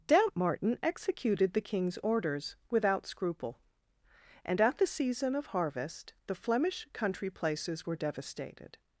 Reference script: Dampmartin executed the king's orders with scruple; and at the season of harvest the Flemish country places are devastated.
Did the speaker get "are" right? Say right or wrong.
wrong